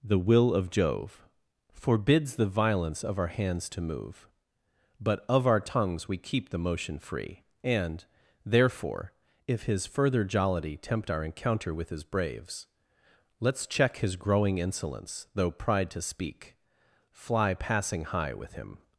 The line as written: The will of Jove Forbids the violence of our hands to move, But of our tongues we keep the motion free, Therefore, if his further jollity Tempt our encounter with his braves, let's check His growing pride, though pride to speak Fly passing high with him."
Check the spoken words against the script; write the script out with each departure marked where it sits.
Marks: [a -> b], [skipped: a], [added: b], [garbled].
The will of Jove Forbids the violence of our hands to move, But of our tongues we keep the motion free, [added: And] Therefore, if his further jollity Tempt our encounter with his braves, let's check His growing [pride, -> insolence] though pride to speak Fly passing high with him."